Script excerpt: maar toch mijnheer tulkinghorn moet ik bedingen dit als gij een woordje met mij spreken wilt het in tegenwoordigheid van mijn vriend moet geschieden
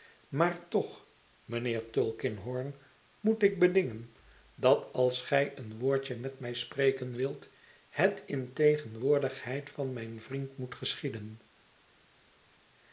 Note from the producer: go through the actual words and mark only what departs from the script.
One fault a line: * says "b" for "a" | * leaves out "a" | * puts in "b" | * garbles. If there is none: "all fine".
* says "dat" for "dit"